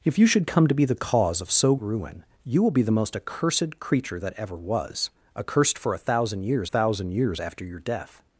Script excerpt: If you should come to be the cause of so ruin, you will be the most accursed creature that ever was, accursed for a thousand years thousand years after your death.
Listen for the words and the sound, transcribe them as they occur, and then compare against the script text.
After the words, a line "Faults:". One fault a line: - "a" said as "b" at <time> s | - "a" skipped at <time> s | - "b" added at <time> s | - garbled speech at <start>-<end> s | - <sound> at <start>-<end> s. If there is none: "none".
If you should come to be the cause of so ruin, you will be the most accursed creature that ever was, accursed for a thousand years thousand years after your death.
Faults:
none